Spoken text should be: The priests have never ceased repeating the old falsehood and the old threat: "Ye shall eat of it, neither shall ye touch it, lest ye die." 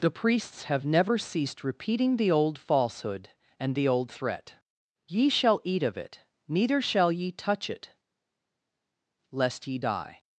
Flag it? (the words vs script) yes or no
no